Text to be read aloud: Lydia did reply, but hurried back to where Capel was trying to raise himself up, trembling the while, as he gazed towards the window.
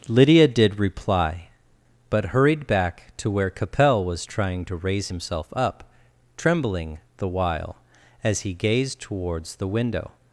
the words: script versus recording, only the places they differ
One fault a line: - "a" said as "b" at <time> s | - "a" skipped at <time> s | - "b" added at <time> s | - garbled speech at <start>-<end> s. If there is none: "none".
none